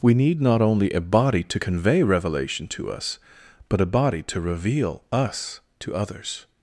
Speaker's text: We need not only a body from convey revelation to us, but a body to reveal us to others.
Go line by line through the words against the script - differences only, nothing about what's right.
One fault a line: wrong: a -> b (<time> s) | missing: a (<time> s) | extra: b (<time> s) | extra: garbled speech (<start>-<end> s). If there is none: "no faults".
wrong: from -> to (1.4 s)